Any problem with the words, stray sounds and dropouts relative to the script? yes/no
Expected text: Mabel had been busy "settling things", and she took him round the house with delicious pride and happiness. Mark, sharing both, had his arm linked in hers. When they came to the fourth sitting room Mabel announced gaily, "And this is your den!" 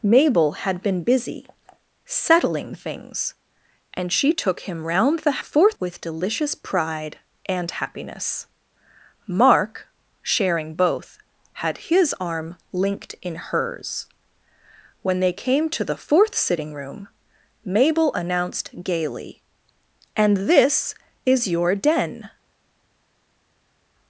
yes